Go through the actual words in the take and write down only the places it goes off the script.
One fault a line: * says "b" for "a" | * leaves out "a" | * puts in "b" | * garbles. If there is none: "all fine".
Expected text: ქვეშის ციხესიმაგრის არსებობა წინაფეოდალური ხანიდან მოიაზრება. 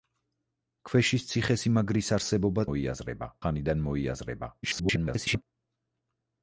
* says "მოიაზრება" for "წინაფეოდალური"
* garbles